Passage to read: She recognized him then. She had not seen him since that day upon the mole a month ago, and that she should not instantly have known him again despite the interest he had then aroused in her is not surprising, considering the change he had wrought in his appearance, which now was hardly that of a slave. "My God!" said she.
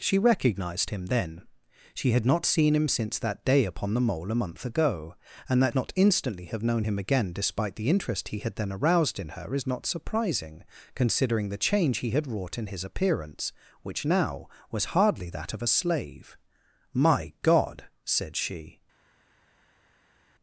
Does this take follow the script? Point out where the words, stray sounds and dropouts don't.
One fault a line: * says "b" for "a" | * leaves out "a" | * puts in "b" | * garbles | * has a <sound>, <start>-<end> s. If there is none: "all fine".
* leaves out "she should"